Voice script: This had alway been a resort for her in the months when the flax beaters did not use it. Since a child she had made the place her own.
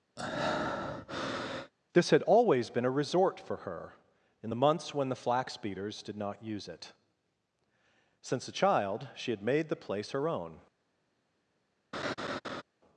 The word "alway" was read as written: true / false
false